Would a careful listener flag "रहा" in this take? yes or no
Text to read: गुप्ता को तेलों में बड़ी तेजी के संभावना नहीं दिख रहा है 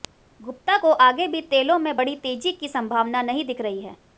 yes